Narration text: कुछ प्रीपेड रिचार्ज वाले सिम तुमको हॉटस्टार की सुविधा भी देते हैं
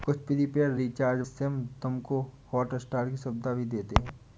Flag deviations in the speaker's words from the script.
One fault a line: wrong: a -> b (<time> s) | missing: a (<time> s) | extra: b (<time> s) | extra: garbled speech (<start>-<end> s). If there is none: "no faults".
missing: वाले (1.2 s)